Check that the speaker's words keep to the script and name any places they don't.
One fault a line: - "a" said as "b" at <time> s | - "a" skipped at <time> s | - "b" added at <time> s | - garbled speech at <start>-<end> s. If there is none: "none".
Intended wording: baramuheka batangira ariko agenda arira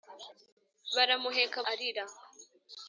- "batangira ariko agenda" skipped at 1.6 s